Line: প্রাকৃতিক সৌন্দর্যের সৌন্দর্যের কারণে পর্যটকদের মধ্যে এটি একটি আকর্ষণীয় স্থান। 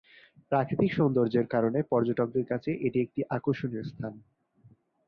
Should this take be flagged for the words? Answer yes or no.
yes